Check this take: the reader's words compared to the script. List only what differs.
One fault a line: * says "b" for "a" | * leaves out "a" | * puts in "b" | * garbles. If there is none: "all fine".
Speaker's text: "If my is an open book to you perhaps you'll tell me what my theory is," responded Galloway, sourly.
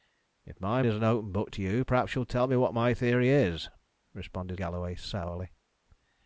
all fine